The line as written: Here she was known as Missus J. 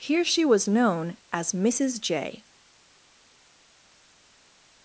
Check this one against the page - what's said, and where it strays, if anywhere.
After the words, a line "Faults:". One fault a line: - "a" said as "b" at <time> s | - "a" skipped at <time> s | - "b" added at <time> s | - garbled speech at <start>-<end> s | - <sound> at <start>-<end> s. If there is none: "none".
Here she was known as Missus J.
Faults:
none